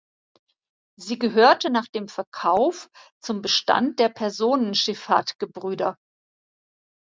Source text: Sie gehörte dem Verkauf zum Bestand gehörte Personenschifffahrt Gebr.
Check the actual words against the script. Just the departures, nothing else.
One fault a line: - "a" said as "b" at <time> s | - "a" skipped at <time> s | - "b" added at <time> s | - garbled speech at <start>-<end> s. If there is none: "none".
- "nach" added at 1.7 s
- "gehörte" said as "der" at 4.0 s